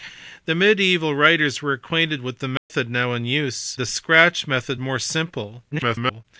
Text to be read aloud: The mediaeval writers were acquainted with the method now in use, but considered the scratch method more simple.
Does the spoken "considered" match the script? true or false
false